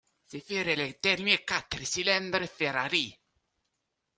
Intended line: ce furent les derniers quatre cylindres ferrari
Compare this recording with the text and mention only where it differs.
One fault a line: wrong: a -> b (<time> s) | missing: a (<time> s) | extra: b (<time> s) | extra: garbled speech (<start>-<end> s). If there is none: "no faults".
no faults